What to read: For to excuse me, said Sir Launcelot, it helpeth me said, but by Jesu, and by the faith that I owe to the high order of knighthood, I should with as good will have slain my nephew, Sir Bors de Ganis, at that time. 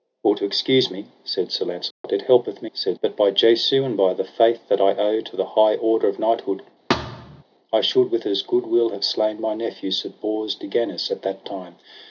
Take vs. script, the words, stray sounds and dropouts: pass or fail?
fail